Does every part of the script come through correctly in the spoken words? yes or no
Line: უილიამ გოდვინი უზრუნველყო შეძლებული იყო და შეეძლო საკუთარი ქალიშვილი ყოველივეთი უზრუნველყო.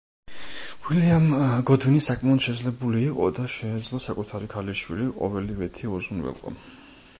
no